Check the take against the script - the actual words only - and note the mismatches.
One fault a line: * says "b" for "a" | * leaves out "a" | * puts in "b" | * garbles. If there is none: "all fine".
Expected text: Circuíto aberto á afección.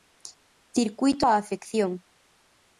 * leaves out "aberto"